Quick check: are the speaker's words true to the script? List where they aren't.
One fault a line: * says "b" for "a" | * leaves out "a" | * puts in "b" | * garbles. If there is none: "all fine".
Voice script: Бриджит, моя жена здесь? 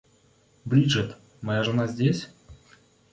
all fine